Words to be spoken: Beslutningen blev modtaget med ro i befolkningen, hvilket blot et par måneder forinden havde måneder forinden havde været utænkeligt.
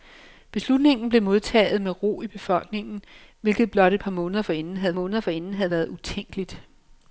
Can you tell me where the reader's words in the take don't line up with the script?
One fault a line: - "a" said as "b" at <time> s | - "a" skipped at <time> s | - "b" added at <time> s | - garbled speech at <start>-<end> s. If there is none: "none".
none